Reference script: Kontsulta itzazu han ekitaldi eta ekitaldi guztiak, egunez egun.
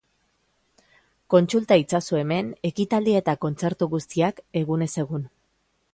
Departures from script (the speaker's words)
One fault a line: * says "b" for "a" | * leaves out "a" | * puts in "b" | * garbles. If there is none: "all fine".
* says "hemen" for "han"
* says "kontzertu" for "ekitaldi"